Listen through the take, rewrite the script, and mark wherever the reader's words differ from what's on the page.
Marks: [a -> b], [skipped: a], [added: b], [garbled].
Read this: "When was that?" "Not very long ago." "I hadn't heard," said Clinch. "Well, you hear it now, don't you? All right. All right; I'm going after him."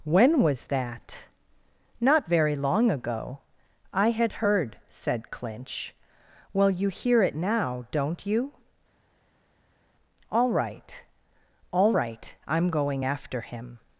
"When was that?" "Not very long ago." "I [hadn't -> had] heard," said Clinch. "Well, you hear it now, don't you? All right. All right; I'm going after him."